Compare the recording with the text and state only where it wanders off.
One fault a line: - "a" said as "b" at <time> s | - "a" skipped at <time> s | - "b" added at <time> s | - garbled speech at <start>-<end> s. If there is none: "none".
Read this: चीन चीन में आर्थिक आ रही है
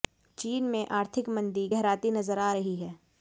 - "चीन" skipped at 0.6 s
- "मंदी गहराती नजर" added at 1.3 s